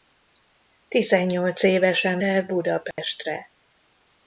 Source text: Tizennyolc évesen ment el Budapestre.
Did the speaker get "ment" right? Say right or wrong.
wrong